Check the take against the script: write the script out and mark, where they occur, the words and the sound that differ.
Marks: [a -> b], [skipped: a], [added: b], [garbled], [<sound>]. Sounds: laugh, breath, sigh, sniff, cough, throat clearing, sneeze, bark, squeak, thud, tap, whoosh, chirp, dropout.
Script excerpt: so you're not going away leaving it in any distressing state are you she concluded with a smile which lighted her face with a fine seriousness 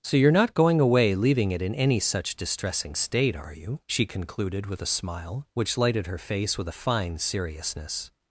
so you're not going away leaving it in any [added: such] distressing state are you she concluded with a smile which lighted her face with a fine seriousness